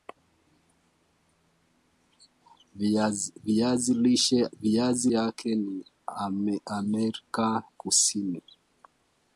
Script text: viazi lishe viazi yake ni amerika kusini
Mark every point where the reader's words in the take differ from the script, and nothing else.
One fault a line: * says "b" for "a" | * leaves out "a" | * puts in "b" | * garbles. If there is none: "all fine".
all fine